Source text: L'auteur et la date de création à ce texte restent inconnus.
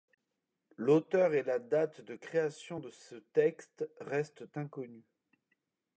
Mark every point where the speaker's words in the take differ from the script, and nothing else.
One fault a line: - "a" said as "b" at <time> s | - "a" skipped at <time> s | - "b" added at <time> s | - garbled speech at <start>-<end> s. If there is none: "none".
- "à" said as "de" at 2.7 s